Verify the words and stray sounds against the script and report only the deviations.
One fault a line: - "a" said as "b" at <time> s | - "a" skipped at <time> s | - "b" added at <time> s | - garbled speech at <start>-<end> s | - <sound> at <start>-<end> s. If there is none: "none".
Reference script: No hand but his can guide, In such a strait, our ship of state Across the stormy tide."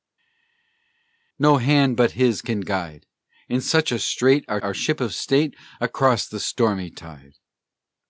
- "our" added at 4.6 s